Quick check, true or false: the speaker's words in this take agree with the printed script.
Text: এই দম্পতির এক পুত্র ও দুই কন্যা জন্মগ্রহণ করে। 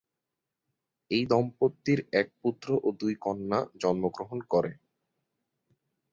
true